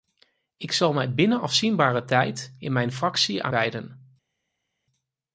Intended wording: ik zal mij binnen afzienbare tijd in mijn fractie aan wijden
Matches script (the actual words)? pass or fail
pass